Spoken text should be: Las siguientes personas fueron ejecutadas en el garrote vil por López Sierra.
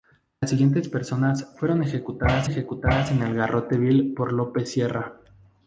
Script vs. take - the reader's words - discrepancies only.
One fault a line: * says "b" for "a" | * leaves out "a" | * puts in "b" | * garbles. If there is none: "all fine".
* puts in "ejecutadas"